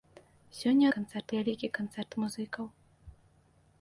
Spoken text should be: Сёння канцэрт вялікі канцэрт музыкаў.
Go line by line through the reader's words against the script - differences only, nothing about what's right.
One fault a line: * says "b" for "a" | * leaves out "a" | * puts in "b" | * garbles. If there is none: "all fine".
all fine